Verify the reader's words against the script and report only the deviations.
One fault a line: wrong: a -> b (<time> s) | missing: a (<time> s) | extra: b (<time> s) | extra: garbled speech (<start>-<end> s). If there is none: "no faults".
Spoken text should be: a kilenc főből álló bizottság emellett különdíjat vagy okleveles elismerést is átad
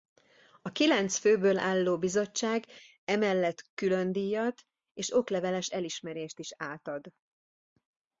wrong: vagy -> és (4.9 s)